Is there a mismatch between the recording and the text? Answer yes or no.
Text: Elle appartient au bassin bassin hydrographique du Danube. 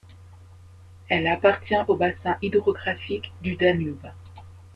yes